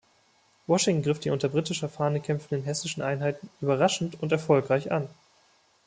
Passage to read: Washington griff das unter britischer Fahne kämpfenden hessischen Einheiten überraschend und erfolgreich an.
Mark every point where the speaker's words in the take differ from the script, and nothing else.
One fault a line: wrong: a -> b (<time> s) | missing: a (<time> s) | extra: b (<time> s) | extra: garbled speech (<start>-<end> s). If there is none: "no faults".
wrong: das -> die (1.2 s)